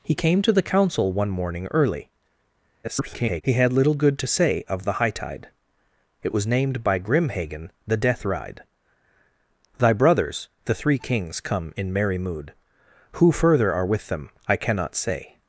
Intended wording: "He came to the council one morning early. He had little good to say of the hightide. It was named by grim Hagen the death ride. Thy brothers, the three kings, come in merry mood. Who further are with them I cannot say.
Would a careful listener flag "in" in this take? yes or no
no